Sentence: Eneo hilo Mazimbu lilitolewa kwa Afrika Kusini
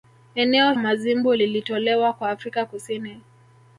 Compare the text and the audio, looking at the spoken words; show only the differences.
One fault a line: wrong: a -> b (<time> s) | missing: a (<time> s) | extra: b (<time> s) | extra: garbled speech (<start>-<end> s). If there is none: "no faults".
missing: hilo (0.7 s)